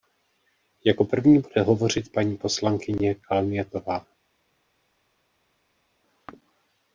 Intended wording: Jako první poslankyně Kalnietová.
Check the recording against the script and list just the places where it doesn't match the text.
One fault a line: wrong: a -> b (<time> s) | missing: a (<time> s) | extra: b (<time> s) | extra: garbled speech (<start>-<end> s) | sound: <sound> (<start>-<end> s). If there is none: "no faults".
extra: bude hovořit paní (1.4 s)